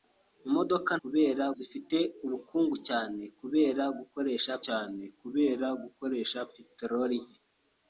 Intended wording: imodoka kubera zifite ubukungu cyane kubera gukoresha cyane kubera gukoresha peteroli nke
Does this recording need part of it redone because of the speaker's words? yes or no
no